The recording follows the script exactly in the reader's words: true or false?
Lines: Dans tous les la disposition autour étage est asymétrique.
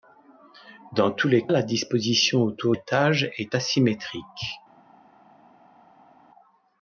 true